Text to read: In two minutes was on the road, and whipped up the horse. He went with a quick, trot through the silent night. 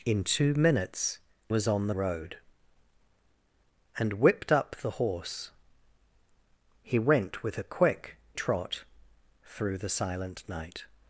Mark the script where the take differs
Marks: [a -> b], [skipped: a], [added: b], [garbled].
In two minutes was on the road, and whipped up the horse. He went with a quick, trot through the silent night.